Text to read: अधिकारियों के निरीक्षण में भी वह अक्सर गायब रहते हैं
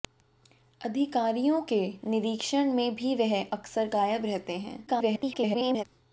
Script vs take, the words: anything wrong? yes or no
yes